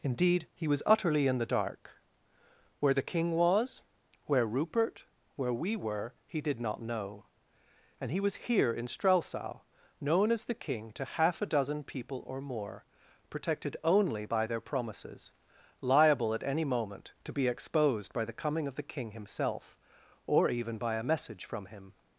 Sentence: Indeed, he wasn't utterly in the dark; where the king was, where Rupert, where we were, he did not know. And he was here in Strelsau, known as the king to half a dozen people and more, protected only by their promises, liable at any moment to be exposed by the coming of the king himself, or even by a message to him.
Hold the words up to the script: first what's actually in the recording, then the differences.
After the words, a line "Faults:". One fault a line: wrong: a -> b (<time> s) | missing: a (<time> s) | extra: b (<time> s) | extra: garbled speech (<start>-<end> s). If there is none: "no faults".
Indeed, he was utterly in the dark; where the king was, where Rupert, where we were, he did not know. And he was here in Strelsau, known as the king to half a dozen people or more, protected only by their promises, liable at any moment to be exposed by the coming of the king himself, or even by a message from him.
Faults:
wrong: wasn't -> was (0.7 s)
wrong: and -> or (12.2 s)
wrong: to -> from (21.4 s)